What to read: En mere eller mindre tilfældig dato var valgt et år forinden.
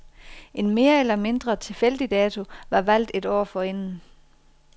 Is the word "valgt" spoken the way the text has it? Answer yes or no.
yes